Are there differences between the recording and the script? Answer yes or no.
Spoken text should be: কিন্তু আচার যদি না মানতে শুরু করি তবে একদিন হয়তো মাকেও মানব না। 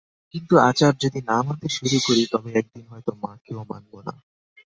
no